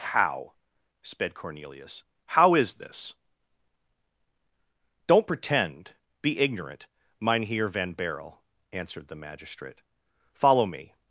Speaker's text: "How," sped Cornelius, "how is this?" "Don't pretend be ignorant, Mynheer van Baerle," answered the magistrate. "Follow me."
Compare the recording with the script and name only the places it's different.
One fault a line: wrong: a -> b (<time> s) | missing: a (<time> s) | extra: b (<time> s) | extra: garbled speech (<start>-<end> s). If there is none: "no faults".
no faults